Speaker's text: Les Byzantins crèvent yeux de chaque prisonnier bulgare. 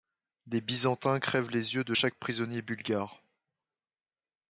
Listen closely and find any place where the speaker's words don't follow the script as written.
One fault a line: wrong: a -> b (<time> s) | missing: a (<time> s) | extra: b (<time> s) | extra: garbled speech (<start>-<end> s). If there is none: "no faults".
extra: les (1.5 s)